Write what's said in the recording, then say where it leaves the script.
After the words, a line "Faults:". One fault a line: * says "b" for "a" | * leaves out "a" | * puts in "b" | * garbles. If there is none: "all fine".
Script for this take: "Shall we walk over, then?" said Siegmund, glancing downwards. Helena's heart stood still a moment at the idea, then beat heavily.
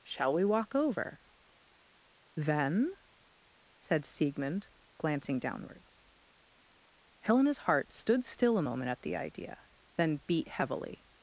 "Shall we walk over, then?" said Siegmund, glancing downwards. Helena's heart stood still a moment at the idea, then beat heavily.
Faults:
all fine